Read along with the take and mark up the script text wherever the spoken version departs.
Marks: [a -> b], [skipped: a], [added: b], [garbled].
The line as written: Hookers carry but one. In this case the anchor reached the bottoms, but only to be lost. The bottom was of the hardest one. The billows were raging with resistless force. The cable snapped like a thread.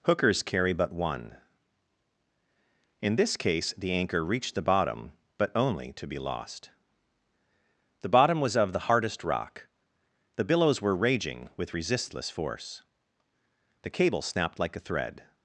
Hookers carry but one. In this case the anchor reached the [bottoms, -> bottom] but only to be lost. The bottom was of the hardest [one. -> rock] The billows were raging with resistless force. The cable snapped like a thread.